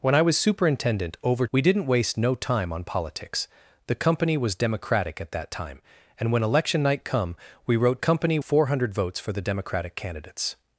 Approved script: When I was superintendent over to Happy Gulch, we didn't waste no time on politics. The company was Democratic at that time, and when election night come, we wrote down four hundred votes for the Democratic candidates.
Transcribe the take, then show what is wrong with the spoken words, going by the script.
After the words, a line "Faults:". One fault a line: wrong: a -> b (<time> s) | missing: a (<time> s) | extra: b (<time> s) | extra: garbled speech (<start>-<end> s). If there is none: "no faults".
When I was superintendent over we didn't waste no time on politics. The company was Democratic at that time, and when election night come, we wrote company four hundred votes for the Democratic candidates.
Faults:
missing: to Happy Gulch (1.4 s)
wrong: down -> company (8.0 s)